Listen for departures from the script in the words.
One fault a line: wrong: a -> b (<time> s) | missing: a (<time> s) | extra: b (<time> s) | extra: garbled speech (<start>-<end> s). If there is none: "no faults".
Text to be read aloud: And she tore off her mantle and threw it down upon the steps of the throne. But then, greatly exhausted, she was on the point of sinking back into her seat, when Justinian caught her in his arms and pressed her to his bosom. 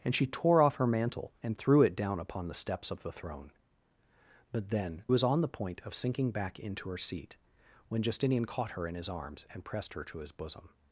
missing: greatly exhausted she (5.0 s)